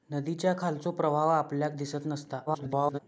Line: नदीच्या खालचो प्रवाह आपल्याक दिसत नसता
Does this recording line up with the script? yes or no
no